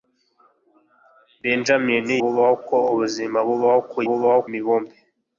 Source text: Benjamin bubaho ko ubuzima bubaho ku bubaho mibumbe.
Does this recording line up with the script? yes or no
yes